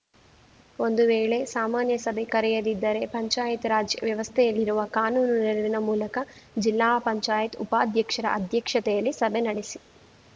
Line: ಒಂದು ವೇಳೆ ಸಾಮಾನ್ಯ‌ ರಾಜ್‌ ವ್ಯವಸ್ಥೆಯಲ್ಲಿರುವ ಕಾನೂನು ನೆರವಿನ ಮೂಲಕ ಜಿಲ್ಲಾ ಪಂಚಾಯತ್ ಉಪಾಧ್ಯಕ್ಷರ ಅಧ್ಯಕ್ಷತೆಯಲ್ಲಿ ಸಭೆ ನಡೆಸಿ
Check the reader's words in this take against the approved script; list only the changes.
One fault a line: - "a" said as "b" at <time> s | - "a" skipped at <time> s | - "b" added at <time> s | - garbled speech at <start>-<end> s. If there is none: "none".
- "ಸಭೆ ಕರೆಯದಿದ್ದರೆ ಪಂಚಾಯತ್" added at 2.0 s